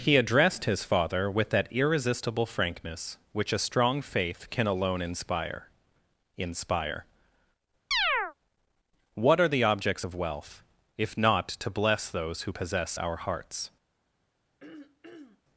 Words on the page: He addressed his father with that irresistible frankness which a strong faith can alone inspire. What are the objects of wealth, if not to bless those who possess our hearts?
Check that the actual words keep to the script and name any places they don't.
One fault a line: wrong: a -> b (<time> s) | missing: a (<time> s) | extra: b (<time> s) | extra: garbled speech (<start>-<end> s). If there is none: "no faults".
extra: inspire (6.4 s)